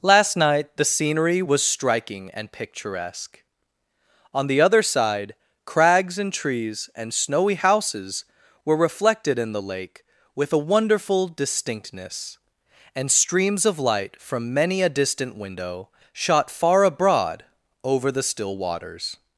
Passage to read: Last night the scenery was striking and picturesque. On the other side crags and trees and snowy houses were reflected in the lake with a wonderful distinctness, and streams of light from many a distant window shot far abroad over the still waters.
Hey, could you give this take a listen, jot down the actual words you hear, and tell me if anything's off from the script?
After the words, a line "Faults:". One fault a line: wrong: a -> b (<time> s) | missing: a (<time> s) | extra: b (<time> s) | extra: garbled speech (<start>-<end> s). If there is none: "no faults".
Last night the scenery was striking and picturesque. On the other side crags and trees and snowy houses were reflected in the lake with a wonderful distinctness, and streams of light from many a distant window shot far abroad over the still waters.
Faults:
no faults